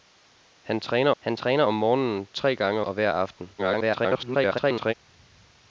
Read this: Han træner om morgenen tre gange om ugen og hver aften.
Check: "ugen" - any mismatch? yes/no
yes